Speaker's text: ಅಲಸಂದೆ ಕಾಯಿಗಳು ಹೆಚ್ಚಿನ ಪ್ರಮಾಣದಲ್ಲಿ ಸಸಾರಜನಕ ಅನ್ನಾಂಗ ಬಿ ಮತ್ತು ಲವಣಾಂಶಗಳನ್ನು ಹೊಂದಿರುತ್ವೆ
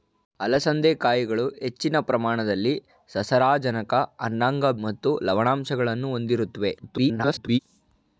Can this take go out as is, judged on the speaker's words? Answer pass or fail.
fail